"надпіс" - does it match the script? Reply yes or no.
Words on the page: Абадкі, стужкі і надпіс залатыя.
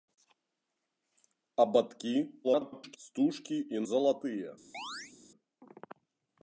no